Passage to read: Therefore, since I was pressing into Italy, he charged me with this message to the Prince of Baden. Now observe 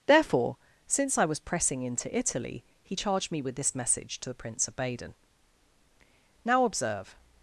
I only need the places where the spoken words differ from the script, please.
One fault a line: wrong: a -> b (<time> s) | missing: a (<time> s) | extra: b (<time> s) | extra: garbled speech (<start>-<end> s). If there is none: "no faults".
no faults